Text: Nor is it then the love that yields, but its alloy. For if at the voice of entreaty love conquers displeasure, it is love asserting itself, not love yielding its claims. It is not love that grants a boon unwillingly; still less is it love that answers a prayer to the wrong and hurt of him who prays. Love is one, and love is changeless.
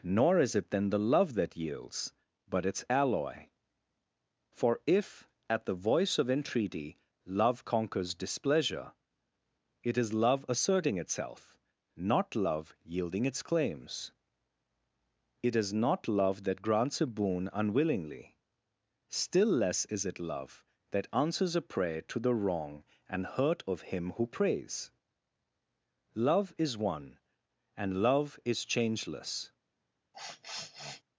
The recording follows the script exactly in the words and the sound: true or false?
false